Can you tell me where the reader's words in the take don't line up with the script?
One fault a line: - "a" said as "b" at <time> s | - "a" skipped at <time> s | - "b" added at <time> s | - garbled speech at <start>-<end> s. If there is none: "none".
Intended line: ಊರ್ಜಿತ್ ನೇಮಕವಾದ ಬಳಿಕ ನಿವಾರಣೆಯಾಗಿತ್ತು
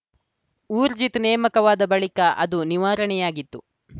- "ಅದು" added at 2.4 s